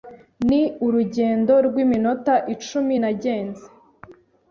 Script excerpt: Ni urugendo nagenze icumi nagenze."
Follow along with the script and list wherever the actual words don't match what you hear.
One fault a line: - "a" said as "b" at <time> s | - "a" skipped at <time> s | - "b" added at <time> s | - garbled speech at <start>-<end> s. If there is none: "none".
- "nagenze" said as "rw'iminota" at 1.7 s